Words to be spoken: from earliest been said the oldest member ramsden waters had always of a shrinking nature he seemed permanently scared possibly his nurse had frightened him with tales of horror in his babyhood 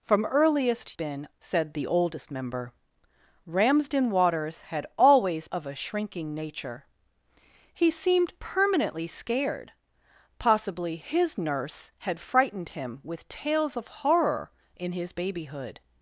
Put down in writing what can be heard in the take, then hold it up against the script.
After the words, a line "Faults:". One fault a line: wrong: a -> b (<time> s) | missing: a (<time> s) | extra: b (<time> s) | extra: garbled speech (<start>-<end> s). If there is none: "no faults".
from earliest been said the oldest member ramsden waters had always of a shrinking nature he seemed permanently scared possibly his nurse had frightened him with tales of horror in his babyhood
Faults:
no faults